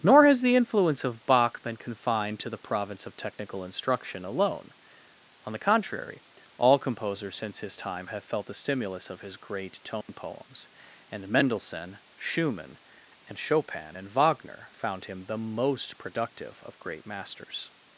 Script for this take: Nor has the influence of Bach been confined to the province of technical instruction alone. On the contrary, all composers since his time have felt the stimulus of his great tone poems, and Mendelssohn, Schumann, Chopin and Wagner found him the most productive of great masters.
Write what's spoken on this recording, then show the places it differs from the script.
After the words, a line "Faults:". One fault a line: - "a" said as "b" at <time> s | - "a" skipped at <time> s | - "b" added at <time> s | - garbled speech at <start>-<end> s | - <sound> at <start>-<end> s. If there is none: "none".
Nor has the influence of Bach been confined to the province of technical instruction alone. On the contrary, all composers since his time have felt the stimulus of his great tone poems, and Mendelssohn, Schumann, and Chopin and Wagner found him the most productive of great masters.
Faults:
- dropout at 10.0-10.1 s
- "and" added at 13.3 s